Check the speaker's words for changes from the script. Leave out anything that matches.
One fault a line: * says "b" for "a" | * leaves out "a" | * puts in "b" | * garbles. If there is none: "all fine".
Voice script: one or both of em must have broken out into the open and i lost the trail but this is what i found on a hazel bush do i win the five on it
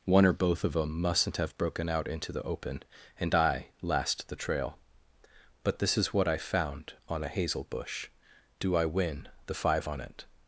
* says "mustn't" for "must"
* says "last" for "lost"